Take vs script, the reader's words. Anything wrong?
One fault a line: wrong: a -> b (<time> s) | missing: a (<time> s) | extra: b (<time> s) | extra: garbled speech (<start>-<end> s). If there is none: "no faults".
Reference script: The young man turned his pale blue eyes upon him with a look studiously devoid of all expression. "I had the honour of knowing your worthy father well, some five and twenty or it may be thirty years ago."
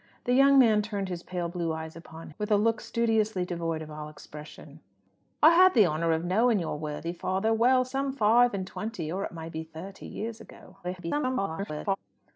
missing: him (2.3 s)
extra: garbled speech (10.8-12.0 s)